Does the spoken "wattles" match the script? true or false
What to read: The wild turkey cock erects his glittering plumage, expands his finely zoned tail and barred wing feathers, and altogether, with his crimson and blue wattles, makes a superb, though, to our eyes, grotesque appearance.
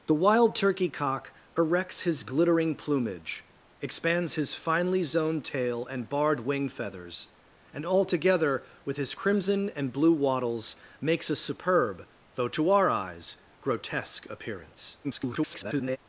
true